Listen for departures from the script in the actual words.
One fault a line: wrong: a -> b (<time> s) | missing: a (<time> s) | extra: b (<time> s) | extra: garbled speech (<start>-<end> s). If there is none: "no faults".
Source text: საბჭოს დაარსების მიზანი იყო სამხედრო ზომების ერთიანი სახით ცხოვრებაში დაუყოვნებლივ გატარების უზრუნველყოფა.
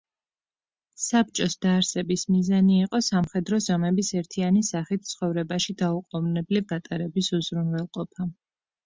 no faults